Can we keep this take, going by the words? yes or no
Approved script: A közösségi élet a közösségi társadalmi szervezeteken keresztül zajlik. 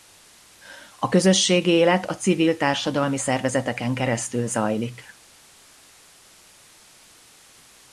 no